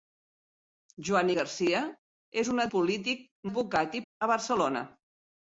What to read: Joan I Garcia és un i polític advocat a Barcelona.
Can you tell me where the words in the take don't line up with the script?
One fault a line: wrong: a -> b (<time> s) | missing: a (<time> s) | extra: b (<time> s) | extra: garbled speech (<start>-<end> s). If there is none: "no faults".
no faults